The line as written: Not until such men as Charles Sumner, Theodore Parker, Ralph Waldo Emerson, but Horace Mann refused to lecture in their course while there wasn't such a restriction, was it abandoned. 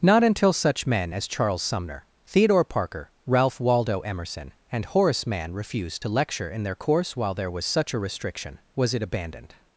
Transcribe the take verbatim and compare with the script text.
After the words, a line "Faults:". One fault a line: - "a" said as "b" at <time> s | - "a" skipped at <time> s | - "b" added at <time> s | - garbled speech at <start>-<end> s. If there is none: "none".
Not until such men as Charles Sumner, Theodore Parker, Ralph Waldo Emerson, and Horace Mann refused to lecture in their course while there was such a restriction, was it abandoned.
Faults:
- "but" said as "and" at 4.7 s
- "wasn't" said as "was" at 7.5 s